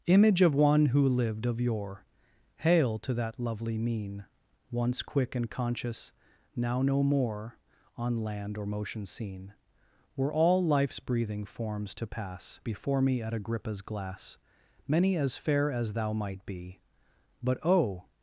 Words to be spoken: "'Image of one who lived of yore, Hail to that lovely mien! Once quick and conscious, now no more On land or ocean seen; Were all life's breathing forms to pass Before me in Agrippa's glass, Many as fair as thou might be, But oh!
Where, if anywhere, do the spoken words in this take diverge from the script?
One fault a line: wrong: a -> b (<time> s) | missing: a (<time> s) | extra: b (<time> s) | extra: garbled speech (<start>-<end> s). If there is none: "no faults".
wrong: ocean -> motion (8.7 s)
wrong: in -> at (13.2 s)